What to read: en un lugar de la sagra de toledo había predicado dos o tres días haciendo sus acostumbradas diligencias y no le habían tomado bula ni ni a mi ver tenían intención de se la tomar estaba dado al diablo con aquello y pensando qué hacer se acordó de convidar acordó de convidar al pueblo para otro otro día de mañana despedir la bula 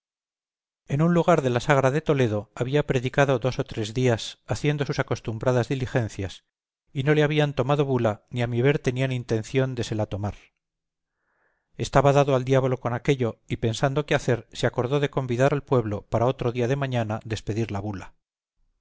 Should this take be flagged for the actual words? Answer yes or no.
yes